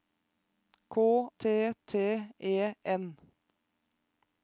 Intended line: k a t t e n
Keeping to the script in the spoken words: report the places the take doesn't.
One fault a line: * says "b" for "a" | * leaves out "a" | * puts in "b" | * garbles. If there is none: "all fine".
* leaves out "a"